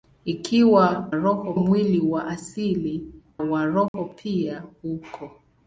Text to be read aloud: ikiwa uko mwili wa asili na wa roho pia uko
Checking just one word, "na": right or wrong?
wrong